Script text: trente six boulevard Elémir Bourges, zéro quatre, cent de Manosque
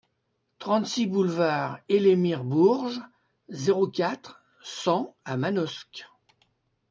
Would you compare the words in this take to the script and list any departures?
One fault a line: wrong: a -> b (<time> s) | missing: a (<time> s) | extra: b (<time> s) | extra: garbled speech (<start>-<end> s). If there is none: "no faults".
wrong: de -> à (5.3 s)